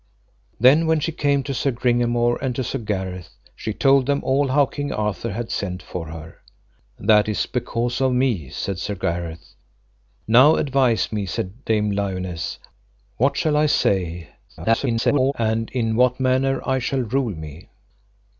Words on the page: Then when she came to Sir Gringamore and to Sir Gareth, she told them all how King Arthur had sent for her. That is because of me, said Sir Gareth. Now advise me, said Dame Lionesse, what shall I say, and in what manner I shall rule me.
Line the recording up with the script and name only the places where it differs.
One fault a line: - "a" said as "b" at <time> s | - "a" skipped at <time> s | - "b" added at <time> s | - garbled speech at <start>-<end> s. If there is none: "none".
- garbled speech at 14.5-15.3 s